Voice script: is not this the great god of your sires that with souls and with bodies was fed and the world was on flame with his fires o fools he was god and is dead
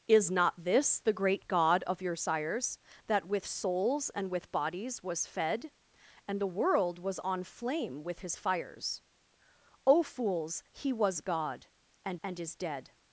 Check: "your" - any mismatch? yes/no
no